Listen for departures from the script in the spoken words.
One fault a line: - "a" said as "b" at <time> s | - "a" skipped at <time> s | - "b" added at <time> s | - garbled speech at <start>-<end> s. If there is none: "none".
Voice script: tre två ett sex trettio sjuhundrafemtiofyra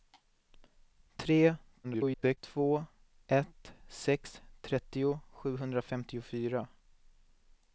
- garbled speech at 1.8-2.4 s